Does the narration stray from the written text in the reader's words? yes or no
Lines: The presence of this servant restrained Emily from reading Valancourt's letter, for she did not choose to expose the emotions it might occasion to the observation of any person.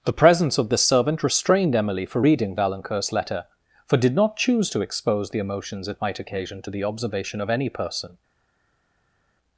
yes